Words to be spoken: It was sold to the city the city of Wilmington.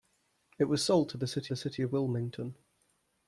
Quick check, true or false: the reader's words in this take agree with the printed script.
true